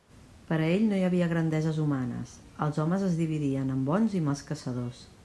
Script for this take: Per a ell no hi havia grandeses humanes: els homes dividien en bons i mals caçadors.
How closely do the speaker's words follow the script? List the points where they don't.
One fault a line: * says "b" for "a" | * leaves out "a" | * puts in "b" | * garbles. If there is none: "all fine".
* puts in "es"